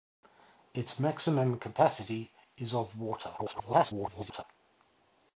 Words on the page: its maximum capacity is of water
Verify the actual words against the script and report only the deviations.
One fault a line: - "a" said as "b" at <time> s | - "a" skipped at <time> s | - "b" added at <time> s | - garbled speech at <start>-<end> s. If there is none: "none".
- garbled speech at 3.4-4.4 s